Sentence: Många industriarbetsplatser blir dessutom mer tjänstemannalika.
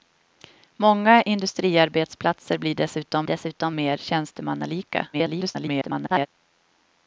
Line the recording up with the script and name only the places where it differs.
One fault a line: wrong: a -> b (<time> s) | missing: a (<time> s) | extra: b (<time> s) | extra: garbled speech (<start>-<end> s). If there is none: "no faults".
extra: dessutom (3.3 s)
extra: garbled speech (5.1-6.3 s)